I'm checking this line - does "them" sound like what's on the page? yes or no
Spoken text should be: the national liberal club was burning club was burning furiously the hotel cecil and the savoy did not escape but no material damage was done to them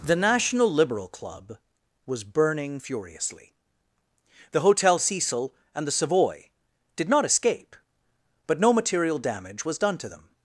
yes